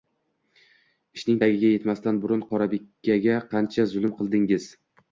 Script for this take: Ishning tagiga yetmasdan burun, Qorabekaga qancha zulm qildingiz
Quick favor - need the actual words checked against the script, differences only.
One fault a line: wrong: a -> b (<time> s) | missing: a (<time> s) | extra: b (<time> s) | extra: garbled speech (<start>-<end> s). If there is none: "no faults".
no faults